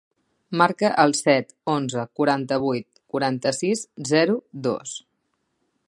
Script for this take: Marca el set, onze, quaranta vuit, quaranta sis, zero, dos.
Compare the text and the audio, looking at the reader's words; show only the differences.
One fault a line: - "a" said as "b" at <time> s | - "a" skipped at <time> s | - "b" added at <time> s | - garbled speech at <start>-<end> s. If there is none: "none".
none